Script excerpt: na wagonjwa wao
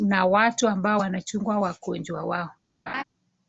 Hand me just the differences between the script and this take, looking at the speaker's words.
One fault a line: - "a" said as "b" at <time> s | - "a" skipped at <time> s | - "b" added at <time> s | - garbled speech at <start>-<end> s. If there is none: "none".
- "watu ambao wanachunga" added at 0.2 s